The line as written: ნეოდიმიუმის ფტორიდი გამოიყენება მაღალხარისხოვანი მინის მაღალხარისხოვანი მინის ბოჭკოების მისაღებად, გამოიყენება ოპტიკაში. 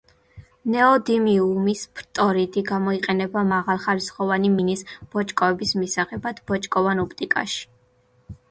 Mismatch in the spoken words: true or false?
true